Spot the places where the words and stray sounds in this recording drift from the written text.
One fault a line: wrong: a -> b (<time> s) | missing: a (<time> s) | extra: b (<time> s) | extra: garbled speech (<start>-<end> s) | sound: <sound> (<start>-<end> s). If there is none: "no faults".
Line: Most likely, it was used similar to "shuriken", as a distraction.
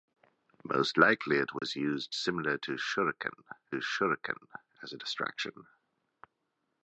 sound: dropout (1.6-1.6 s)
extra: shuriken (3.7 s)